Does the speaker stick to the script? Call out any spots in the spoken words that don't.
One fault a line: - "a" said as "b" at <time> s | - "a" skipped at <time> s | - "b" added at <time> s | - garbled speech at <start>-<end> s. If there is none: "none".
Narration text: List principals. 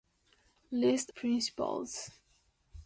none